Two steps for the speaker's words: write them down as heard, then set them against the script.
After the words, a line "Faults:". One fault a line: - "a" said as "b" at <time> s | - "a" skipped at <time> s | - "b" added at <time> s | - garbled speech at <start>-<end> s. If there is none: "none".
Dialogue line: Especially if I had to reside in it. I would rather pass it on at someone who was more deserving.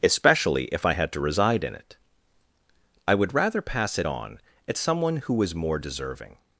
Especially if I had to reside in it. I would rather pass it on at someone who was more deserving.
Faults:
none